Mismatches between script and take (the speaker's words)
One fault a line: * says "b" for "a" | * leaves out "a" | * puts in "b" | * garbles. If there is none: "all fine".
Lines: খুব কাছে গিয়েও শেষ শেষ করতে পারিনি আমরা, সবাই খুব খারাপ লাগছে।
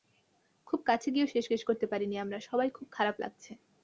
all fine